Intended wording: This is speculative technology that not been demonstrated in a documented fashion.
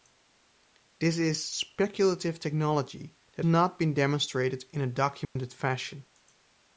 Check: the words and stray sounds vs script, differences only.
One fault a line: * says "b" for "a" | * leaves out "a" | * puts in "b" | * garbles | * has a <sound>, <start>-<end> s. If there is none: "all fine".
* has a dropout, 5.2-5.4 s